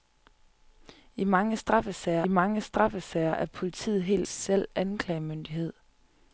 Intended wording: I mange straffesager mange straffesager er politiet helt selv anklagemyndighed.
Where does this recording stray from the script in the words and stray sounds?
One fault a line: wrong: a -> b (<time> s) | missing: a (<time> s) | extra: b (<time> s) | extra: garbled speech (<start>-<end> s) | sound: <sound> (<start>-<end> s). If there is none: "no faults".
no faults